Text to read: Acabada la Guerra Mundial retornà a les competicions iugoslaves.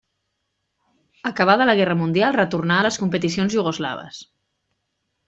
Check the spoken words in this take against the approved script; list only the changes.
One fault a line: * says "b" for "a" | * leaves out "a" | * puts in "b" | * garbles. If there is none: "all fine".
all fine